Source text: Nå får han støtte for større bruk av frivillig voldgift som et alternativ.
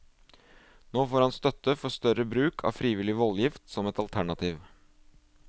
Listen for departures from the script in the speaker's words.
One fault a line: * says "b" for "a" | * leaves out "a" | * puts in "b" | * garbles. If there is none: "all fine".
all fine